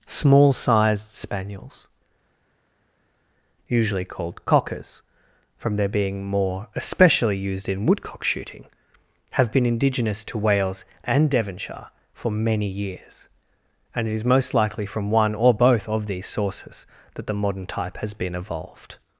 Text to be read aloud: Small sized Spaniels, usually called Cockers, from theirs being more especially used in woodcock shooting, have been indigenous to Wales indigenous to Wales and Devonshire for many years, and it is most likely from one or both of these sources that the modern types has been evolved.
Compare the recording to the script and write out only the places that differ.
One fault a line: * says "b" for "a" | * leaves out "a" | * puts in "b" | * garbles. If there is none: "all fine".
* says "their" for "theirs"
* leaves out "indigenous to Wales"
* says "type" for "types"